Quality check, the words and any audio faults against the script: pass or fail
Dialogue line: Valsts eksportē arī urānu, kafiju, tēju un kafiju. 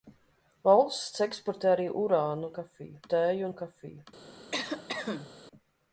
fail